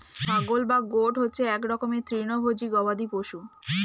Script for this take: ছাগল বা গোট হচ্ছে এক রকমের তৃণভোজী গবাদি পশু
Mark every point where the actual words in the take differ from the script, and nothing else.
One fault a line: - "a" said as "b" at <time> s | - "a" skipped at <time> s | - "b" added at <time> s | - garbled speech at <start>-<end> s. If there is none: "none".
none